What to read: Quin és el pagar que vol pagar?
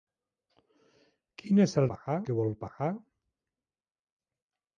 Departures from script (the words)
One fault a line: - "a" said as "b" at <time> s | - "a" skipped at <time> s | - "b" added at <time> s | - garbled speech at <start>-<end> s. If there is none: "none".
none